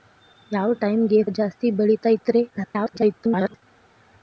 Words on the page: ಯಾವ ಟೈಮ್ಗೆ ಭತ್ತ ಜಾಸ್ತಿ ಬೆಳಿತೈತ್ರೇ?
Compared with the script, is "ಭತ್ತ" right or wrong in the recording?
wrong